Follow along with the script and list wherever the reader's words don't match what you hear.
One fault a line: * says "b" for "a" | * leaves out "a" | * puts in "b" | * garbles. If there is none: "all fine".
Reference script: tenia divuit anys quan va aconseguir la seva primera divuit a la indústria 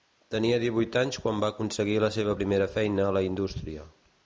* says "feina" for "divuit"